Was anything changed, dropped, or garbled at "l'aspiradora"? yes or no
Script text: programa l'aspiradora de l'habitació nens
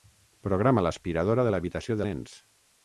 no